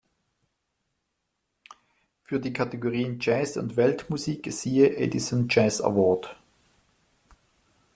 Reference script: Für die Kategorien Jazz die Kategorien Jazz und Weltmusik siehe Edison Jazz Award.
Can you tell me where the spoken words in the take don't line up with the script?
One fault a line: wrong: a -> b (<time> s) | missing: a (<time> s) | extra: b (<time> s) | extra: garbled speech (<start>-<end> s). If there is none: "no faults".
missing: die Kategorien Jazz (3.5 s)